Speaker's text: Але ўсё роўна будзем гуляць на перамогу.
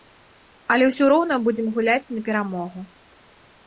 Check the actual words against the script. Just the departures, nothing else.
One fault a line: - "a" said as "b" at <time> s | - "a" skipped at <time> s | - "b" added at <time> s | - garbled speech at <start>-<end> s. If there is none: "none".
none